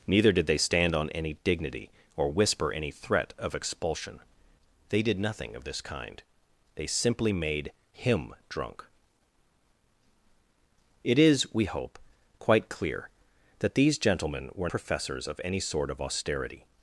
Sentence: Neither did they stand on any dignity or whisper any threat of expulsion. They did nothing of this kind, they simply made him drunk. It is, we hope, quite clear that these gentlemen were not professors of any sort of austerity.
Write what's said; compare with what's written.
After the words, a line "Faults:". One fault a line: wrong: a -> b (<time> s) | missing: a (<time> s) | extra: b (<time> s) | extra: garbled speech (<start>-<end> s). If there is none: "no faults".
Neither did they stand on any dignity or whisper any threat of expulsion. They did nothing of this kind, they simply made him drunk. It is, we hope, quite clear that these gentlemen were professors of any sort of austerity.
Faults:
missing: not (14.7 s)